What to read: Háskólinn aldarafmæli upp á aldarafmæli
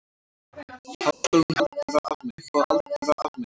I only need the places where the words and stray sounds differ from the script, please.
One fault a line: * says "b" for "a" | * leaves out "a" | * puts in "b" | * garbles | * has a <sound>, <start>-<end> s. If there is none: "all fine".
* has a dropout, 1.1-1.2 s